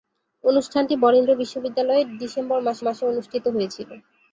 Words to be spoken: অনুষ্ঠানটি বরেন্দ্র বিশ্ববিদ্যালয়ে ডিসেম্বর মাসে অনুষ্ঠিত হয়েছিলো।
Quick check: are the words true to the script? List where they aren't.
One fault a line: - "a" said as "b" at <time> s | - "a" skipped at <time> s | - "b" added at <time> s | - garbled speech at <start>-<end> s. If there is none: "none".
- "মাসে" added at 2.9 s